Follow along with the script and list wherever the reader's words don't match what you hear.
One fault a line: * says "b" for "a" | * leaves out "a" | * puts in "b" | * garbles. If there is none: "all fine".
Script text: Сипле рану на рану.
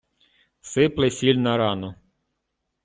* says "сіль" for "рану"